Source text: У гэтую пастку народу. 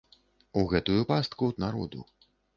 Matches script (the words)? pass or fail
pass